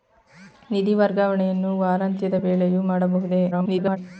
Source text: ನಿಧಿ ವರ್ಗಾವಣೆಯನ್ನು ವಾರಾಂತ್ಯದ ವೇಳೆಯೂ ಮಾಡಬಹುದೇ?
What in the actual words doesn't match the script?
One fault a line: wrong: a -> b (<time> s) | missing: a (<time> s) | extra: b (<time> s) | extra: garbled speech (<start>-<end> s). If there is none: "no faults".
extra: garbled speech (3.5-4.0 s)